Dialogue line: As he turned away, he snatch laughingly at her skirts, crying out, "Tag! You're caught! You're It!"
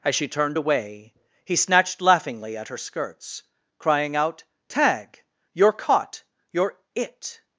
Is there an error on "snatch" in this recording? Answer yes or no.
yes